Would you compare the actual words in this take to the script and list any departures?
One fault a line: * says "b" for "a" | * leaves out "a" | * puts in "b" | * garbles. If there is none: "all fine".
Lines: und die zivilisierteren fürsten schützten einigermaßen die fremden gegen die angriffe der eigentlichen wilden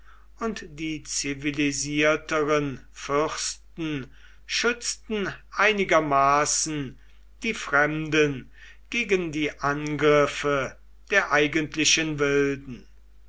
all fine